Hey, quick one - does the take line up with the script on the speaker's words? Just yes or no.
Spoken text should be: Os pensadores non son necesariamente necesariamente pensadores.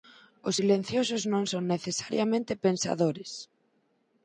no